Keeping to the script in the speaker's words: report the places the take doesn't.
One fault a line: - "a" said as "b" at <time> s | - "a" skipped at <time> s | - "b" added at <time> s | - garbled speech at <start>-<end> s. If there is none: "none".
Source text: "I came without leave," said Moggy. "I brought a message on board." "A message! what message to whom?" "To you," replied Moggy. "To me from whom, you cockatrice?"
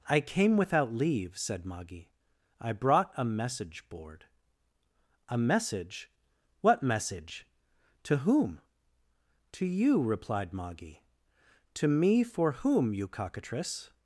- "on" skipped at 3.9 s
- "from" said as "for" at 12.2 s